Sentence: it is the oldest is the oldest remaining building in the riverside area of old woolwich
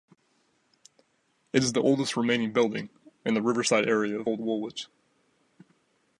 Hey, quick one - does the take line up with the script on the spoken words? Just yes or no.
no